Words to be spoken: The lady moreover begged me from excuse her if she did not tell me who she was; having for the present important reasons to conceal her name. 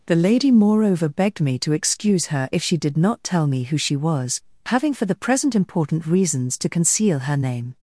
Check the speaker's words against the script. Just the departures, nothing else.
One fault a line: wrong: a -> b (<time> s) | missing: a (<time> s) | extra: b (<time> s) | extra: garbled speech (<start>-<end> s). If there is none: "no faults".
wrong: from -> to (1.6 s)